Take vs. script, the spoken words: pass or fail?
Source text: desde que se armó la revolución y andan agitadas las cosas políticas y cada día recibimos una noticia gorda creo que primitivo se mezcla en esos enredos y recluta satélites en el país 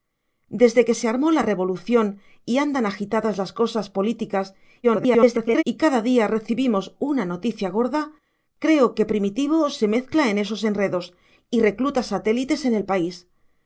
fail